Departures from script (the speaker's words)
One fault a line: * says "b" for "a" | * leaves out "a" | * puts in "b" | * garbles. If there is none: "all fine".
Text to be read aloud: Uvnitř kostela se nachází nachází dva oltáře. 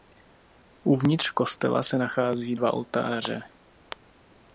* leaves out "nachází"